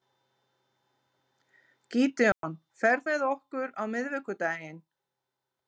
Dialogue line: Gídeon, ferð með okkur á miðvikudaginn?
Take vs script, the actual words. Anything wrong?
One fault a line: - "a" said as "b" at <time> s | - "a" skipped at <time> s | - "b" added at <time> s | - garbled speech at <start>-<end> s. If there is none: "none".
none